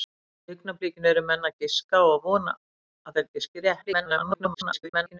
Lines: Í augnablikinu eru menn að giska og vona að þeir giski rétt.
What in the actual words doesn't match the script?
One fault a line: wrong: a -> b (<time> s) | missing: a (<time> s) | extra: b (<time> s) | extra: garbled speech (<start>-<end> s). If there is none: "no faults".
extra: garbled speech (3.8-5.2 s)